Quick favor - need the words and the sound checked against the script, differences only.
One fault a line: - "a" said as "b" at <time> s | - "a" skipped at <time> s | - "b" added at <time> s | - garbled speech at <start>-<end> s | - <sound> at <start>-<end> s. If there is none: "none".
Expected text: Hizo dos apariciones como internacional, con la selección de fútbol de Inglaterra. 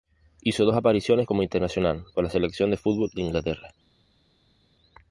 none